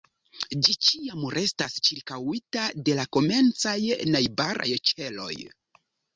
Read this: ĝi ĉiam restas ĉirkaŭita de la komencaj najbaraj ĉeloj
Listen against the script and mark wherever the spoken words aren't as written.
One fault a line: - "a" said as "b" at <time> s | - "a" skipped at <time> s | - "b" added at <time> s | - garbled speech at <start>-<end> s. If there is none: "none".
none